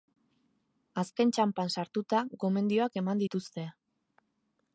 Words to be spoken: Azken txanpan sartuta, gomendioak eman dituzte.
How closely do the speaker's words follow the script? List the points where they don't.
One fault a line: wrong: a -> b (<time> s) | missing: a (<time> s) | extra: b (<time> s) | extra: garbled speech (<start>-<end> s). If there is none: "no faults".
no faults